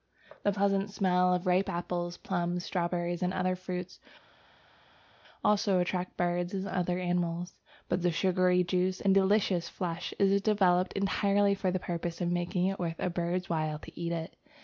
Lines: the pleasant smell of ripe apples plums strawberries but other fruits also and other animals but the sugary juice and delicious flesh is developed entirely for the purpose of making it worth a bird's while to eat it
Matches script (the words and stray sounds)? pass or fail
fail